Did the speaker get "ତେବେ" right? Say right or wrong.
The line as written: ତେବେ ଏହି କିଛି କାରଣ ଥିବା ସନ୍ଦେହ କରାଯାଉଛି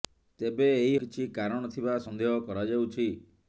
right